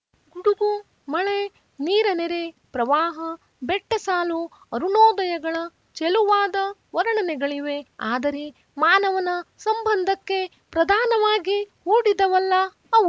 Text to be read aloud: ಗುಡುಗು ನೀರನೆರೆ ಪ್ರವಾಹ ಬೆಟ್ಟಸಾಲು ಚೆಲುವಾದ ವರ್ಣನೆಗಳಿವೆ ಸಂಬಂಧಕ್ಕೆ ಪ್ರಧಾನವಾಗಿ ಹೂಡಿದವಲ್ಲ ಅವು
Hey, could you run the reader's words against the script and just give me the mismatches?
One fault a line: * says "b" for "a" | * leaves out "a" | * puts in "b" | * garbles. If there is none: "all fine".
* puts in "ಮಳೆ"
* puts in "ಅರುಣೋದಯಗಳ"
* puts in "ಆದರೆ ಮಾನವನ"